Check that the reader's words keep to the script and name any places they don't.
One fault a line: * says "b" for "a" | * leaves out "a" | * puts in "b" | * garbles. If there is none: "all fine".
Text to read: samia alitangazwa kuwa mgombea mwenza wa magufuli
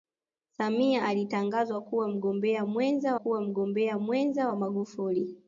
* puts in "kuwa mgombea mwenza"